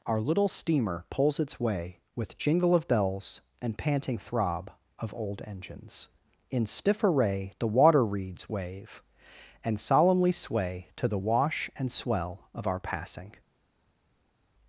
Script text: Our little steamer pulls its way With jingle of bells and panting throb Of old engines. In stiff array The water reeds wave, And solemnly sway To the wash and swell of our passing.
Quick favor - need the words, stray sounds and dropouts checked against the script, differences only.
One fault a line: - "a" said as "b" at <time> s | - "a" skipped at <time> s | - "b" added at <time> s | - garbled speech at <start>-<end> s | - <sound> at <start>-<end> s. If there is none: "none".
none